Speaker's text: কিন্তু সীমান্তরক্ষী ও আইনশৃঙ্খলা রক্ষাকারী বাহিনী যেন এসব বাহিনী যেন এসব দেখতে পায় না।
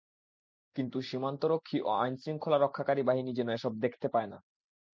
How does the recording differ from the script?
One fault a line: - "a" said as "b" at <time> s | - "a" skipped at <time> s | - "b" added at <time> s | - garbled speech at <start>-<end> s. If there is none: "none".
- "বাহিনী যেন এসব" skipped at 3.7 s